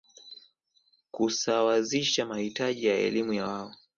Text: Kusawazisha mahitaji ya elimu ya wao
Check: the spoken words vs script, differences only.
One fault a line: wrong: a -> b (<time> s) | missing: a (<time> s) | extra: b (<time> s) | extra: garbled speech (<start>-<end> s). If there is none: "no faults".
no faults